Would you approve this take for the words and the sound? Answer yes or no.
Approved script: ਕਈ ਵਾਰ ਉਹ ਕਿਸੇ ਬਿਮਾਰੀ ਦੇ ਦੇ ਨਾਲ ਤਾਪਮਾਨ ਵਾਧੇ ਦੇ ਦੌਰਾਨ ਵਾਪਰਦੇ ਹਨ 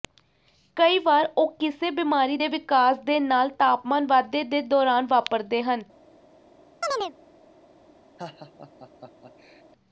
no